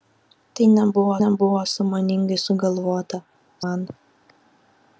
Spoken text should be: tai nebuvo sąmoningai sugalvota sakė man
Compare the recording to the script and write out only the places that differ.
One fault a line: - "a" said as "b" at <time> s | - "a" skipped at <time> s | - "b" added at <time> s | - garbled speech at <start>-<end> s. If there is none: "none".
- "nebuvo" added at 1.2 s
- "sakė" skipped at 3.2 s